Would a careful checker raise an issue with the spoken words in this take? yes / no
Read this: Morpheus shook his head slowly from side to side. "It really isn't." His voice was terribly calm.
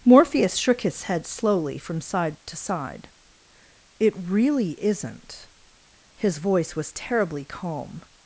no